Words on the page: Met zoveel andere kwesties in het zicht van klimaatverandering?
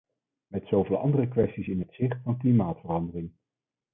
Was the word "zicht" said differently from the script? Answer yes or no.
no